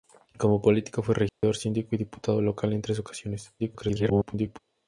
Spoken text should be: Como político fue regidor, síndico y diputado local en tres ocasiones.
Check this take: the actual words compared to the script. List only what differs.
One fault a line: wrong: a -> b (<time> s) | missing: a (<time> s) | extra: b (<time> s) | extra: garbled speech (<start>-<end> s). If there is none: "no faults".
extra: garbled speech (3.6-4.6 s)